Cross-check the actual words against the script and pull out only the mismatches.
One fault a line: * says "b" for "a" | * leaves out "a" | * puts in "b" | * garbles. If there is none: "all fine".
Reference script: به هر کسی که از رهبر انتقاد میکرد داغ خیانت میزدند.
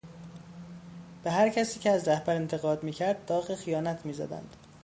all fine